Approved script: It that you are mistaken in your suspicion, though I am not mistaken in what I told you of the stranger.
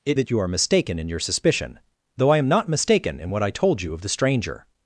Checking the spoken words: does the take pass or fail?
pass